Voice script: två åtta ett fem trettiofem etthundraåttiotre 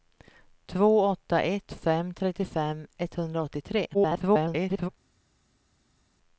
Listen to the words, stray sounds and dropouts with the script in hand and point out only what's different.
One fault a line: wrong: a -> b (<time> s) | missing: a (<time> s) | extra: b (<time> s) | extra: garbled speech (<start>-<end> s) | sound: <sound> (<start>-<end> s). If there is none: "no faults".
extra: garbled speech (3.9-4.9 s)